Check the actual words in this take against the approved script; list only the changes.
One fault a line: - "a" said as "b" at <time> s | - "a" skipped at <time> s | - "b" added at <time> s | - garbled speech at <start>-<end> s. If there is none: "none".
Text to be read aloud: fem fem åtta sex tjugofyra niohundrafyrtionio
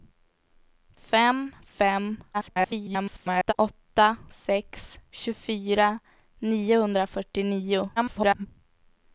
- garbled speech at 2.3-3.5 s
- garbled speech at 8.0-8.5 s